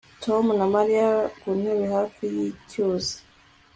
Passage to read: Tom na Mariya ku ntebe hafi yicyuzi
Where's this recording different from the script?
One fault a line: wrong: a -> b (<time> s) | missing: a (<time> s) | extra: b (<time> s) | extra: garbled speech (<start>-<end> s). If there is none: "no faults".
no faults